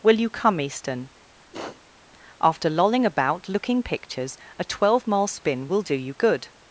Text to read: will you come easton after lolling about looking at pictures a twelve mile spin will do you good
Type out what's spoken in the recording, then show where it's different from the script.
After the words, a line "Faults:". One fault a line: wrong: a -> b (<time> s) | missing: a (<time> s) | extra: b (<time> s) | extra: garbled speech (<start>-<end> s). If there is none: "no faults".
will you come easton after lolling about looking pictures a twelve mile spin will do you good
Faults:
missing: at (3.8 s)